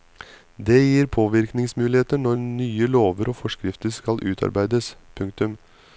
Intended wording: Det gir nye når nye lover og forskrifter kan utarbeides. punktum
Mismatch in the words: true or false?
true